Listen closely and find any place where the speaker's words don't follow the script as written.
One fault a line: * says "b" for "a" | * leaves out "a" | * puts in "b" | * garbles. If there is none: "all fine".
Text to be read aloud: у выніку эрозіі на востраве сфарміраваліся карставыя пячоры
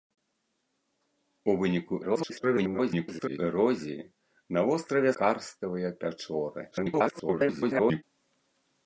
* garbles
* leaves out "сфарміраваліся"
* garbles